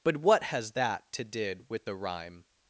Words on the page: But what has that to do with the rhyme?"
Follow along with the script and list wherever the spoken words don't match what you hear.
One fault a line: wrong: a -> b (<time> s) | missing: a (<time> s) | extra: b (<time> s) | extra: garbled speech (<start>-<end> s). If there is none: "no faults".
wrong: do -> did (1.3 s)